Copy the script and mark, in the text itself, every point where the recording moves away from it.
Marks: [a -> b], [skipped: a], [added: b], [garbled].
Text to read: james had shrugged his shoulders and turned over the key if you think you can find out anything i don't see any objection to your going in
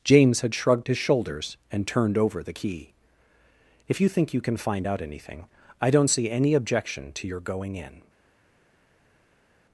james had shrugged his shoulders and turned over the key if you think you can find out anything i don't see any objection to your going in